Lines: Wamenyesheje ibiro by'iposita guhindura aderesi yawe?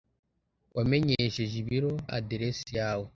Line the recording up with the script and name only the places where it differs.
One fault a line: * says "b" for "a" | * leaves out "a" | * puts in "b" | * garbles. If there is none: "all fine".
* leaves out "by'iposita guhindura"